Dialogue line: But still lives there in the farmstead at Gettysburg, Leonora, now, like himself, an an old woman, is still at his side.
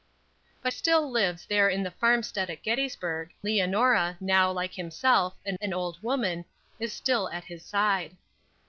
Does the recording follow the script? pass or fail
pass